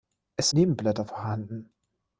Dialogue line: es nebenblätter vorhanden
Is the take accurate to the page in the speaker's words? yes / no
yes